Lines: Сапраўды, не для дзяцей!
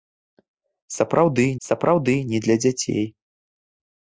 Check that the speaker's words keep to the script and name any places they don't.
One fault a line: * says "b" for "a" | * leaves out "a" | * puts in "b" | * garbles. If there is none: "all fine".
* puts in "сапраўды"